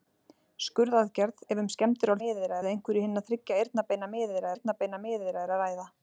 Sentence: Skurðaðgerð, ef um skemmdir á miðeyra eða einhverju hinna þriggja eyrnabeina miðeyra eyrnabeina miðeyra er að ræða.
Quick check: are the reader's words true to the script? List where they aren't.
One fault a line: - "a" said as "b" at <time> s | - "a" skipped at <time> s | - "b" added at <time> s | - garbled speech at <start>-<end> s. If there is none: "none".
none